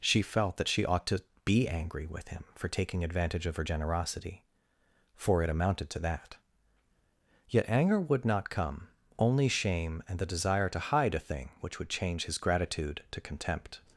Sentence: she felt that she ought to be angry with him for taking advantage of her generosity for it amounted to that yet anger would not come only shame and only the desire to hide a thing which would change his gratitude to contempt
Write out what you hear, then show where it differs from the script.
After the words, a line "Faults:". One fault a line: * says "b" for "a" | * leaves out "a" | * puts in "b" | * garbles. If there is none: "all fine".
she felt that she ought to be angry with him for taking advantage of her generosity for it amounted to that yet anger would not come only shame and the desire to hide a thing which would change his gratitude to contempt
Faults:
* leaves out "only"